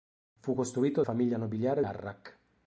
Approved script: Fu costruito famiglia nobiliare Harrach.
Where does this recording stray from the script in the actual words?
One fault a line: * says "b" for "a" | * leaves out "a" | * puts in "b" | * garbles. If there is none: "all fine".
all fine